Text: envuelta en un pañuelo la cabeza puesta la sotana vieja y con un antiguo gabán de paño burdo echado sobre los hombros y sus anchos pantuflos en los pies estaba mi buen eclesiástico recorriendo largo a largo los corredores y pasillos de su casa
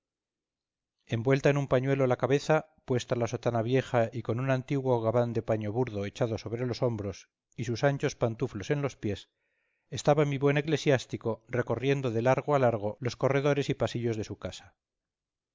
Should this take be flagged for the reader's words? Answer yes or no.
yes